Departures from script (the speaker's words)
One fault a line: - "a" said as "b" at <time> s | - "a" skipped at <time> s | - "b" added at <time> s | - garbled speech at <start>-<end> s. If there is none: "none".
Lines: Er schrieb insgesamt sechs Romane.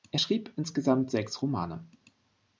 none